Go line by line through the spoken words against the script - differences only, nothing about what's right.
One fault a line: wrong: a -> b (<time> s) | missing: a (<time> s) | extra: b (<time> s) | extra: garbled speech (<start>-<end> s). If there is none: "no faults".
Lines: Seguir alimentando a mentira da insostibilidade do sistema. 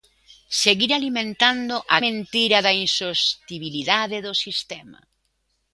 no faults